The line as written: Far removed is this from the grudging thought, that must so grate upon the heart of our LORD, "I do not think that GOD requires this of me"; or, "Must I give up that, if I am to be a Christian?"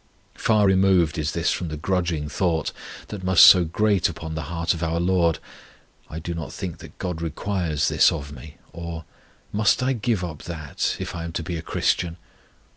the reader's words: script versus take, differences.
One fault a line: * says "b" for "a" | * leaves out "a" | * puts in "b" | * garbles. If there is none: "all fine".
all fine